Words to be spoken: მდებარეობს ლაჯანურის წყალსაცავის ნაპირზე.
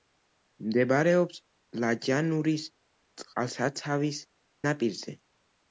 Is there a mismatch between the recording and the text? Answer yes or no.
no